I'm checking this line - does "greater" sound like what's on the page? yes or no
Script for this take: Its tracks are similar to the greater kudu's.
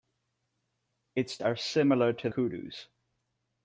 no